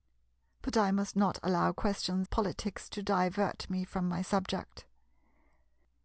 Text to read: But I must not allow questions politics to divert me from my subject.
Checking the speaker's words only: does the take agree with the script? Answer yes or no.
yes